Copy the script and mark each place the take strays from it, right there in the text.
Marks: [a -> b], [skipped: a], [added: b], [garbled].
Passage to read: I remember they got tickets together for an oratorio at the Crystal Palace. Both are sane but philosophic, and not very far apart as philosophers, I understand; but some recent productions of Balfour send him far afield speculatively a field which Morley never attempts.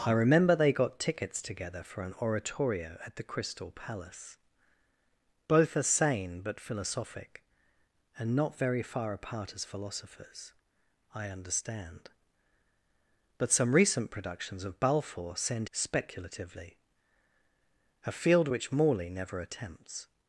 I remember they got tickets together for an oratorio at the Crystal Palace. Both are sane but philosophic, and not very far apart as philosophers, I understand; but some recent productions of Balfour send [skipped: him far afield] speculatively a field which Morley never attempts.